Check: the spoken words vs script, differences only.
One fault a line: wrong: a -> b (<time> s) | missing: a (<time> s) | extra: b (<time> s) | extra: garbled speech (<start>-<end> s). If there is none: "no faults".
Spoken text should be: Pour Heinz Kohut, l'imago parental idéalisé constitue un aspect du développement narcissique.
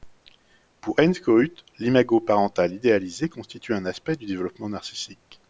no faults